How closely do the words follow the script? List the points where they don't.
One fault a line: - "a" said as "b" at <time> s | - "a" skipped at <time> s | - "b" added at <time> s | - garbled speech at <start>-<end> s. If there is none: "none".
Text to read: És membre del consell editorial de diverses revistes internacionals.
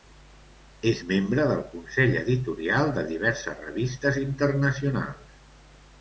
none